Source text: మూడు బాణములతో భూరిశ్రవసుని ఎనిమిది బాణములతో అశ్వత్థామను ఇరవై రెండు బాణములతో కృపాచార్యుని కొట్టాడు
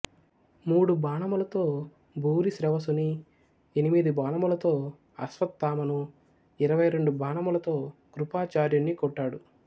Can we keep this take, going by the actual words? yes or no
yes